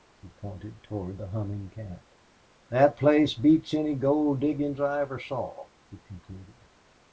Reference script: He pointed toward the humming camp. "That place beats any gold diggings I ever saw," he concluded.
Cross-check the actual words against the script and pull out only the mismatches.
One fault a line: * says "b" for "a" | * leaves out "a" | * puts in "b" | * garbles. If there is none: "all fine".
all fine